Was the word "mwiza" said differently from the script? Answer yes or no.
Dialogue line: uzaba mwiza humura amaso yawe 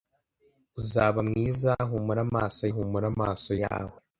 no